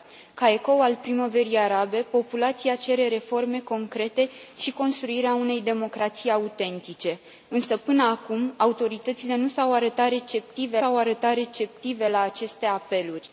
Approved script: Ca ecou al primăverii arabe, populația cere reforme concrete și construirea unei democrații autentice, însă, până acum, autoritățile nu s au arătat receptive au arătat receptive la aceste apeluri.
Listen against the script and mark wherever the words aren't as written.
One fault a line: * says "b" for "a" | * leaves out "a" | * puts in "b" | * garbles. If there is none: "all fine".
all fine